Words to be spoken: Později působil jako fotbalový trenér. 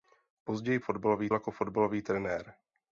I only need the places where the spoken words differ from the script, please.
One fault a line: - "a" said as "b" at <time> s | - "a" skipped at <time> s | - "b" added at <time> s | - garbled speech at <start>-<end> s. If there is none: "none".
- "působil" said as "fotbalový" at 0.8 s